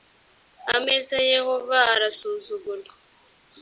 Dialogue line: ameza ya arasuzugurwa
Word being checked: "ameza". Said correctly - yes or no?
yes